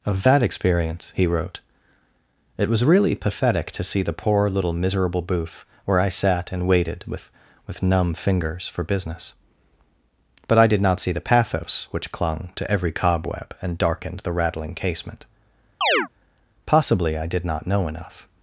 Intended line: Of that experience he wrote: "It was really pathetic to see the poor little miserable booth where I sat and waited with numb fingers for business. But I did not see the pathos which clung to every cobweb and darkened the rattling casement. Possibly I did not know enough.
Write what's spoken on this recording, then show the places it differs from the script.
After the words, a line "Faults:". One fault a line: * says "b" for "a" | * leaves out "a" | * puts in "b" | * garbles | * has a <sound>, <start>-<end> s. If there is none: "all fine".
Of that experience he wrote: "It was really pathetic to see the poor little miserable booth where I sat and waited with with numb fingers for business. But I did not see the pathos which clung to every cobweb and darkened the rattling casement. Possibly I did not know enough.
Faults:
* puts in "with"
* has a chirp, 15.8-16.1 s